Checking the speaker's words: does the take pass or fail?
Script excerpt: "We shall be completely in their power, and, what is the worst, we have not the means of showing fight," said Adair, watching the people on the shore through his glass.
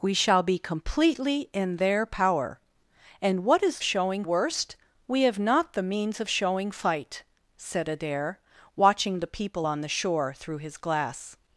fail